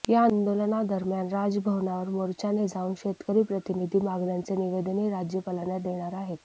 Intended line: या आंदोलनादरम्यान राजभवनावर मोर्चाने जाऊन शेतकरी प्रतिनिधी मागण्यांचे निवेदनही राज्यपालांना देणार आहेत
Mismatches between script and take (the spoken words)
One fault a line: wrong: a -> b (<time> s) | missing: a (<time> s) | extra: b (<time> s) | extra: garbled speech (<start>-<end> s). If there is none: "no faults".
no faults